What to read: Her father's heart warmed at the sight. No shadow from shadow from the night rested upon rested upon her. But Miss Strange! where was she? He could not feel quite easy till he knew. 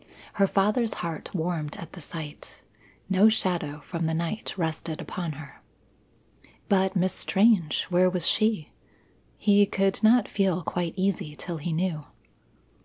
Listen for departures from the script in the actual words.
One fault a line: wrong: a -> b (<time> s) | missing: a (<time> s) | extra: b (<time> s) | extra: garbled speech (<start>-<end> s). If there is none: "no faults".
missing: shadow from (4.1 s)
missing: rested upon (5.3 s)